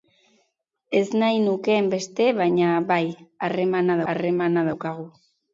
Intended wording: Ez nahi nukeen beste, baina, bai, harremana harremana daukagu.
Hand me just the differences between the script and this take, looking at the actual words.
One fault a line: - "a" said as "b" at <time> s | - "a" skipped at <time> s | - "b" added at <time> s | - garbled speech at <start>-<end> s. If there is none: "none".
none